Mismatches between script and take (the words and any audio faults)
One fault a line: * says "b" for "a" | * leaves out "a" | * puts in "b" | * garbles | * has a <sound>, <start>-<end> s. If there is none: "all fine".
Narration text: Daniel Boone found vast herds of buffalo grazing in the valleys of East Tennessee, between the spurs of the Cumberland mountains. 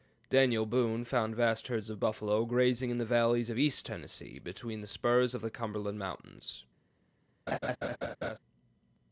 * has a laugh, 7.5-8.4 s